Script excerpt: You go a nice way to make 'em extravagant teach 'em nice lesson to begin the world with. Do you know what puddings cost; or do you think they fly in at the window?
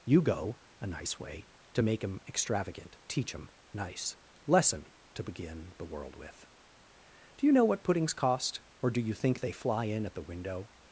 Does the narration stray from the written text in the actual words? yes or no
no